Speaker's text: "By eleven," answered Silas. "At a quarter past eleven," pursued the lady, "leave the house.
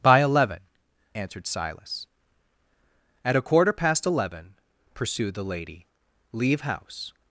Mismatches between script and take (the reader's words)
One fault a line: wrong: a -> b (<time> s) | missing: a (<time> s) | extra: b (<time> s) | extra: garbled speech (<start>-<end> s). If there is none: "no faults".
missing: the (6.6 s)